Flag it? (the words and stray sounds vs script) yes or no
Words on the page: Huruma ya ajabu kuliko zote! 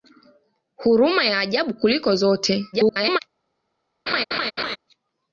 yes